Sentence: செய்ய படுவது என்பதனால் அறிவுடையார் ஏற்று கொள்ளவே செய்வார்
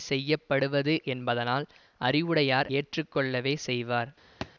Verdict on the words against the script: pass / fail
pass